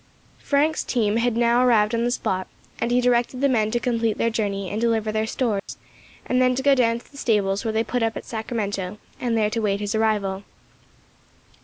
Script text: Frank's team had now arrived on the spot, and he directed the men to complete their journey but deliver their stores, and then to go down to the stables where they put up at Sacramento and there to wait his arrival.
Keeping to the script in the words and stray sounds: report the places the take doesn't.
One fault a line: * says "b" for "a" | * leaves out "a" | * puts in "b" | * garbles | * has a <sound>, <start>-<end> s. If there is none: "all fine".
* says "and" for "but"
* has a dropout, 5.6-5.7 s